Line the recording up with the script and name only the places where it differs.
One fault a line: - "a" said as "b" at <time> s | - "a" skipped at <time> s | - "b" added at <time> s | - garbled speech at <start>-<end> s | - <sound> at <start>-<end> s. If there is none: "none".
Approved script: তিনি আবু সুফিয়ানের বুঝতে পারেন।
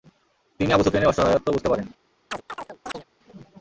- "অসহায়ত্ব" added at 1.1 s
- chirp at 2.3-3.0 s